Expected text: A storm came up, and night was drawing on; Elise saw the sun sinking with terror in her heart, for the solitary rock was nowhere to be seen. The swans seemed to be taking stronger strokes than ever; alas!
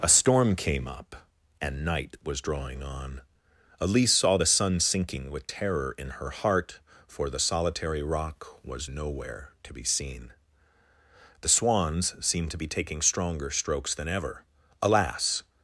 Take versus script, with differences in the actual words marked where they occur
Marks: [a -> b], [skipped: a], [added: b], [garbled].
A storm came up, and night was drawing on; Elise saw the sun sinking with terror in her heart, for the solitary rock was nowhere to be seen. The swans seemed to be taking stronger strokes than ever; alas!